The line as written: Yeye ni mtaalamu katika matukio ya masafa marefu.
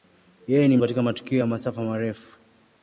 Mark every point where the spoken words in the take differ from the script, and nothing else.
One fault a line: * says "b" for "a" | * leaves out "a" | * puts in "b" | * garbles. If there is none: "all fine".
* leaves out "mtaalamu"